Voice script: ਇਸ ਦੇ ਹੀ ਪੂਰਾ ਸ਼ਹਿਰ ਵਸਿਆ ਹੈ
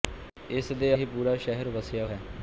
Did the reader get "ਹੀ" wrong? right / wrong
right